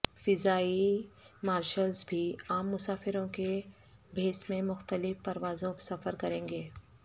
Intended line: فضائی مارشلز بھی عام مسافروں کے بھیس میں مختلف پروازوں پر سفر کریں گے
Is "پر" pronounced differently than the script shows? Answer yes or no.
yes